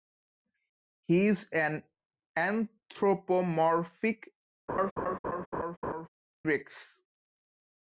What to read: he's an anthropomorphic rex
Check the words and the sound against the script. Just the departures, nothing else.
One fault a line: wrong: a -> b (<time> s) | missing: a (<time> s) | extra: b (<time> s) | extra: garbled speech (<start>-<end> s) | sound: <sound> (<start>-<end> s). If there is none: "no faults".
sound: laugh (4.7-6.1 s)